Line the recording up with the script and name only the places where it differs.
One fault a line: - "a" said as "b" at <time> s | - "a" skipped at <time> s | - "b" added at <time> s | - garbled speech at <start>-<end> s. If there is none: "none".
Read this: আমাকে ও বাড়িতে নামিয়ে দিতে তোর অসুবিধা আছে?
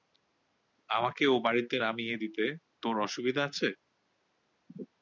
none